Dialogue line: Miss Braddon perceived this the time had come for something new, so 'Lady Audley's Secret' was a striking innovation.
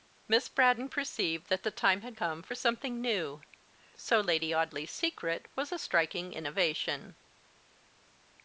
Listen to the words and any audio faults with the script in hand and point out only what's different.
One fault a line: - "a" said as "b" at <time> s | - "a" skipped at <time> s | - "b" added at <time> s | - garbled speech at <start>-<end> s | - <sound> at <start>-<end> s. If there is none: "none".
- "this" said as "that" at 1.5 s